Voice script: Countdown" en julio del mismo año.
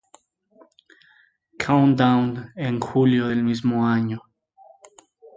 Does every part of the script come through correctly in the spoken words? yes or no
yes